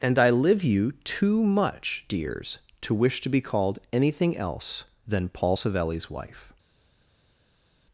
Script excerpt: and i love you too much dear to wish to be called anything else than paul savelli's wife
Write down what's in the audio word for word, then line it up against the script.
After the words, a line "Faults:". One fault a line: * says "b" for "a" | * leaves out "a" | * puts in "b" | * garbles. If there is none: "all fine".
and i live you too much dears to wish to be called anything else than paul savelli's wife
Faults:
* says "live" for "love"
* says "dears" for "dear"